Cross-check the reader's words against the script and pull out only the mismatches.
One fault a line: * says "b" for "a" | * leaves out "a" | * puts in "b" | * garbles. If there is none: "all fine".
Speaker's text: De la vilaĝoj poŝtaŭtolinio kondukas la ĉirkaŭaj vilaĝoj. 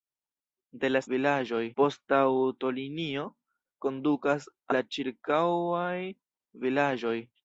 all fine